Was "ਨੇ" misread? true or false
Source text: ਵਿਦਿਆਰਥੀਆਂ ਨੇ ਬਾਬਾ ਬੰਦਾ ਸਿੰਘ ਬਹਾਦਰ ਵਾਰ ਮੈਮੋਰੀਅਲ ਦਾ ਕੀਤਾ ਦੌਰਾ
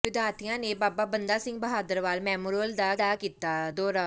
false